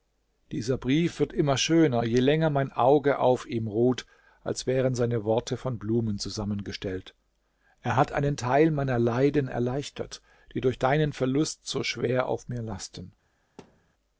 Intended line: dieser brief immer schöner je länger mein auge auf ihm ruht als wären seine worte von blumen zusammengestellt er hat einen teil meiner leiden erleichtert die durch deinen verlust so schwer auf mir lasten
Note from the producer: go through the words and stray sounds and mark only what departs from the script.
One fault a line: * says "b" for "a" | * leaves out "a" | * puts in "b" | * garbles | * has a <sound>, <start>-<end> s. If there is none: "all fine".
* puts in "wird"
* has a thud, 13.6-13.9 s